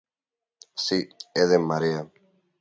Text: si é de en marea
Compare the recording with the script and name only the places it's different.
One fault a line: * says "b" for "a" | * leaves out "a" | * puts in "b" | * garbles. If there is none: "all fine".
all fine